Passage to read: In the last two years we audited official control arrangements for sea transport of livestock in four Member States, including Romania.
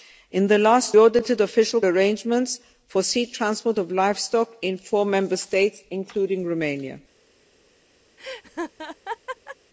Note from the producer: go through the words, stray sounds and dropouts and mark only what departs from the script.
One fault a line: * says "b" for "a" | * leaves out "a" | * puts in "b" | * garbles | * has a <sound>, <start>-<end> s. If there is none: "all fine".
* leaves out "two years we"
* leaves out "control"
* has a laugh, 8.2-9.6 s